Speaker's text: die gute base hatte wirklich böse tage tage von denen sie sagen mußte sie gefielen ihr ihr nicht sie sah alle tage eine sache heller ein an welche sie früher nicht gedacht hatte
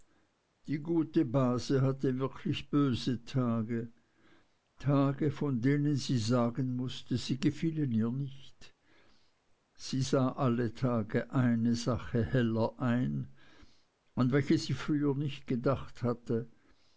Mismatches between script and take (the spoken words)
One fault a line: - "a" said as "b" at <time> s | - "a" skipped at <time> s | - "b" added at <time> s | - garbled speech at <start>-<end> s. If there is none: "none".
- "ihr" skipped at 8.1 s